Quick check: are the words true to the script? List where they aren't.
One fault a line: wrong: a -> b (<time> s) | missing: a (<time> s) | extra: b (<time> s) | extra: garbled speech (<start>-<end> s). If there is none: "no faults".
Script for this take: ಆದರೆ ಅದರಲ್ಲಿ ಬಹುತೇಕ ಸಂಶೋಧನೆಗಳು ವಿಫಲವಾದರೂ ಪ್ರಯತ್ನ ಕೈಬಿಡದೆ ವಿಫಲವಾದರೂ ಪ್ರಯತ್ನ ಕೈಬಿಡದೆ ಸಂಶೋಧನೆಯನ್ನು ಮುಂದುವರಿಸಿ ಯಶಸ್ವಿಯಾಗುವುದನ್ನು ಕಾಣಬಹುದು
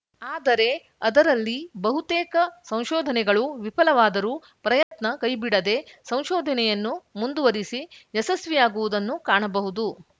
missing: ವಿಫಲವಾದರೂ ಪ್ರಯತ್ನ ಕೈಬಿಡದೆ (5.8 s)